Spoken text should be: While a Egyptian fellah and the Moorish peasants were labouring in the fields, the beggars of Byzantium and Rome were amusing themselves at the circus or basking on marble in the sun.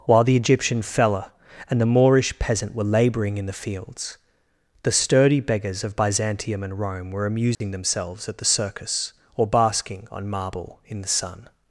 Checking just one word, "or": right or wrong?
right